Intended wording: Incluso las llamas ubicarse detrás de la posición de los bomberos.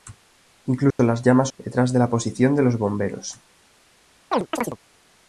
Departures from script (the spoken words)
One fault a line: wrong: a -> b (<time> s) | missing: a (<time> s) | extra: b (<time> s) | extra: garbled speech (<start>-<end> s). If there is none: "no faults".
missing: ubicarse (1.5 s)